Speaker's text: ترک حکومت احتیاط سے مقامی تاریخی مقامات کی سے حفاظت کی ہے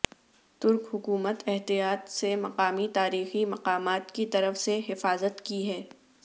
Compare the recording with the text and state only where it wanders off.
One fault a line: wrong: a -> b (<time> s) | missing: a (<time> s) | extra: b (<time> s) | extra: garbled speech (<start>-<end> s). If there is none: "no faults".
extra: طرف (4.3 s)